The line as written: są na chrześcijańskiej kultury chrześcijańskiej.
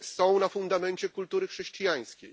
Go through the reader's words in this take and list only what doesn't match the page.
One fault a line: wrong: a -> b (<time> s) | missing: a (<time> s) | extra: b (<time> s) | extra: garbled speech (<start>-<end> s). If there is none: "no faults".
wrong: chrześcijańskiej -> fundamencie (0.5 s)